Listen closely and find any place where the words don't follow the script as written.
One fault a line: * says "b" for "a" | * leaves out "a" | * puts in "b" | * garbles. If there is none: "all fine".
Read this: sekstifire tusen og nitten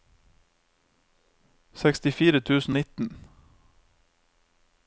* leaves out "og"